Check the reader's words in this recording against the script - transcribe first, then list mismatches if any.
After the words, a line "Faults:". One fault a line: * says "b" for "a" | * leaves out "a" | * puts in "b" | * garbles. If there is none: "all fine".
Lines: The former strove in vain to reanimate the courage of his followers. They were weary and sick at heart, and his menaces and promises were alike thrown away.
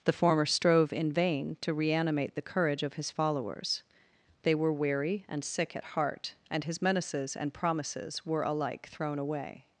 The former strove in vain to reanimate the courage of his followers. They were weary and sick at heart, and his menaces and promises were alike thrown away.
Faults:
all fine